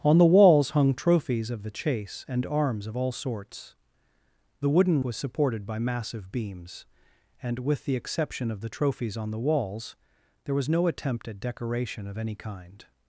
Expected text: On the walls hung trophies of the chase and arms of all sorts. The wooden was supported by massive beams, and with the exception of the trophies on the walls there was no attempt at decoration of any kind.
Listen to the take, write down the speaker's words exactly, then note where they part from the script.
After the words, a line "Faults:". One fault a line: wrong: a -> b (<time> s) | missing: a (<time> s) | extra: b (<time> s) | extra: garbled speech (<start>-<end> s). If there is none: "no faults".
On the walls hung trophies of the chase and arms of all sorts. The wooden was supported by massive beams, and with the exception of the trophies on the walls there was no attempt at decoration of any kind.
Faults:
no faults